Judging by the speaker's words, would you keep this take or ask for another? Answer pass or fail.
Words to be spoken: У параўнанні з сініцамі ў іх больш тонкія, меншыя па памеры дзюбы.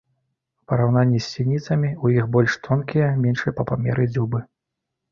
pass